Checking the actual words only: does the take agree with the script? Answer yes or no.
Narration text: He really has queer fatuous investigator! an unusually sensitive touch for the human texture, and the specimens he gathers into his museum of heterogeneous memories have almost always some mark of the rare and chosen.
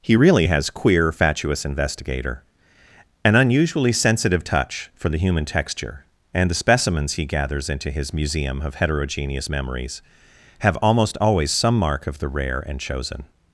yes